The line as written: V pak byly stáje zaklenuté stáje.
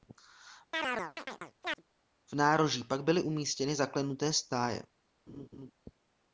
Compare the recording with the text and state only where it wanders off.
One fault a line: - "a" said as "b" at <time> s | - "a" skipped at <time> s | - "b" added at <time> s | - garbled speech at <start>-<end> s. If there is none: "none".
- "nároží" added at 2.4 s
- "stáje" said as "umístěny" at 3.2 s